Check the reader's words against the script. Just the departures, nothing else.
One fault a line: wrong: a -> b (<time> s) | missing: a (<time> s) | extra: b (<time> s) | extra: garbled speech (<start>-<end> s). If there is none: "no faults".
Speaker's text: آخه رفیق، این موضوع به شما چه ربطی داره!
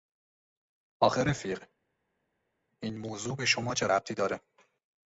no faults